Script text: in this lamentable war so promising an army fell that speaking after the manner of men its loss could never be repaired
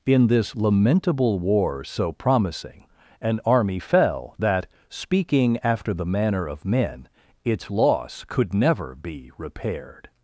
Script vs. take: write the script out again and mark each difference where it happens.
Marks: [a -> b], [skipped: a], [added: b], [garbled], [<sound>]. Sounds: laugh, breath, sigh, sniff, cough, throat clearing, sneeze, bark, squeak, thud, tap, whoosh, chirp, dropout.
in this lamentable war so promising an army fell that speaking after the manner of men its loss could never be repaired